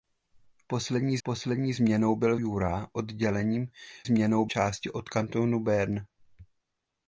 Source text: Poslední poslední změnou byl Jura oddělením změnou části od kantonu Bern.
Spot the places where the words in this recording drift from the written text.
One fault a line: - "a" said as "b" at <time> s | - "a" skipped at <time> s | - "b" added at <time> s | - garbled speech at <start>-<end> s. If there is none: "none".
none